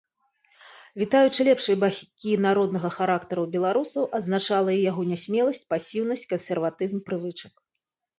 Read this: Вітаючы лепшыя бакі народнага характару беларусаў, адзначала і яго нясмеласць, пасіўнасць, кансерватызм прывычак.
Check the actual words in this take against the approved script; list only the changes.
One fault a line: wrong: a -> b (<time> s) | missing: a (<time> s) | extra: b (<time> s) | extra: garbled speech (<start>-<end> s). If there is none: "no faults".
no faults